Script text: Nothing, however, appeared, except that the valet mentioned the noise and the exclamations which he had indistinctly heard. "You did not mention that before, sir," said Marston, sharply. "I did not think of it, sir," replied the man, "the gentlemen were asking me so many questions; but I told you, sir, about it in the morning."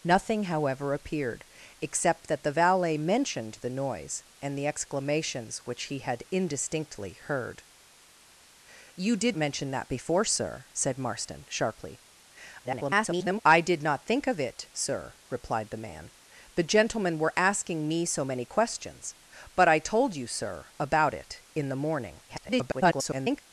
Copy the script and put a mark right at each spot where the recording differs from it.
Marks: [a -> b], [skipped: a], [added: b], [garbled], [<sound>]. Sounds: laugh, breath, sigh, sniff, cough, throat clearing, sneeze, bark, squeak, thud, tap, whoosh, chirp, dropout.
Nothing, however, appeared, except that the valet mentioned the noise and the exclamations which he had indistinctly heard. "You did [skipped: not] mention that before, sir," said Marston, sharply. [garbled] "I did not think of it, sir," replied the man, "the gentlemen were asking me so many questions; but I told you, sir, about it in the morning." [garbled]